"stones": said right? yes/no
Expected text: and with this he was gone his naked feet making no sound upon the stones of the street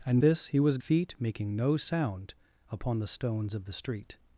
yes